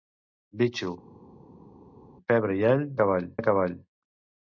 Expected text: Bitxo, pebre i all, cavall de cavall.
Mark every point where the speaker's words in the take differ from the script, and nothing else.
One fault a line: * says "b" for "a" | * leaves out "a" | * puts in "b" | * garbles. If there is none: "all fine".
all fine